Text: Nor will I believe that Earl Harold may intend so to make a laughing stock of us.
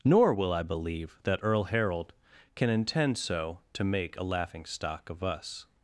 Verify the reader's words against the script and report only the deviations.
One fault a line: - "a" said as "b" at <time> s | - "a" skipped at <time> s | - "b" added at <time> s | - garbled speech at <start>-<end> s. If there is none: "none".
- "may" said as "can" at 2.5 s